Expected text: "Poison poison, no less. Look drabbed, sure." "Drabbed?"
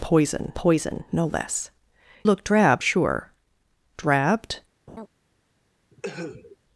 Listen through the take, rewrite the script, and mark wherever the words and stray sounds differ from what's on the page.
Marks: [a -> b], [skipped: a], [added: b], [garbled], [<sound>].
"Poison poison, no less. Look drabbed, sure." "Drabbed?" [laugh] [cough]